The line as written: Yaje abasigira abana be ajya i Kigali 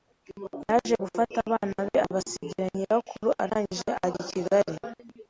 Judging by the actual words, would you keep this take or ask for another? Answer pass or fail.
fail